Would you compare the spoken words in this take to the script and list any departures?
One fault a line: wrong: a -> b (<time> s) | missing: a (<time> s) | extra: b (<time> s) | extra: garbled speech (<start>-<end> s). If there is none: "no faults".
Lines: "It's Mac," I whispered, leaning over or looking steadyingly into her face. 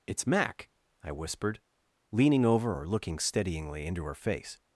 no faults